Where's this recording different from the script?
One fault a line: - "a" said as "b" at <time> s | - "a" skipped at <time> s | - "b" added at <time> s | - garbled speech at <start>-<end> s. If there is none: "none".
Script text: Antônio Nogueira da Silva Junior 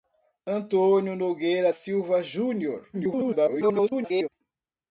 - "da" skipped at 1.7 s
- garbled speech at 2.9-4.3 s